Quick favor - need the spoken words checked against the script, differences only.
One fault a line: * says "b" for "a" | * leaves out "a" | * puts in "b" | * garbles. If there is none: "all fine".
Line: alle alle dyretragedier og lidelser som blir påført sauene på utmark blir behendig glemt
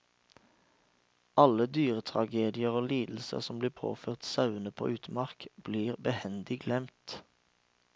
* leaves out "alle"